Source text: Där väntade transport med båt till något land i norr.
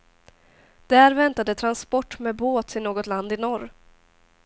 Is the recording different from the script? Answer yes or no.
no